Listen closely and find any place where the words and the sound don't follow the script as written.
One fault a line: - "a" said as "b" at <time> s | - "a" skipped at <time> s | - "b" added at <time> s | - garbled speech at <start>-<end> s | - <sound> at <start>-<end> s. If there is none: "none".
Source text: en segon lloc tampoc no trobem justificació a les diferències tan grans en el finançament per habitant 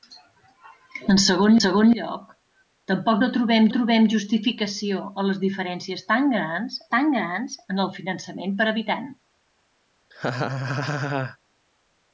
- "segon" added at 1.6 s
- "trobem" added at 3.8 s
- "tan grans" added at 7.0 s
- laugh at 10.1-11.4 s